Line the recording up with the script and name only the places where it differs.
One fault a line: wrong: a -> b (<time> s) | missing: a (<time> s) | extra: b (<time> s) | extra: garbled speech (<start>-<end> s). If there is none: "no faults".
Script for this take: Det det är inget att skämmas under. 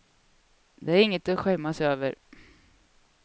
missing: det (0.9 s)
wrong: under -> över (1.8 s)